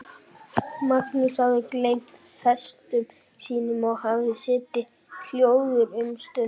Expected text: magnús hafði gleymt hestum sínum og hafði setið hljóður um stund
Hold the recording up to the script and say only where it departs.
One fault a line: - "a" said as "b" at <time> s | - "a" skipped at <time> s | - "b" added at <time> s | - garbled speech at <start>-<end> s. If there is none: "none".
none